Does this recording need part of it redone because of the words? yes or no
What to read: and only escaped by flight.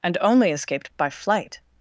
no